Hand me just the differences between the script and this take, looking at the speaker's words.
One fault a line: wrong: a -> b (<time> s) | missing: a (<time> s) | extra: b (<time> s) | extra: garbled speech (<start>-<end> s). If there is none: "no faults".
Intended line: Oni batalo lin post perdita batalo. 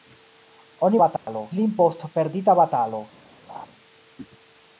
no faults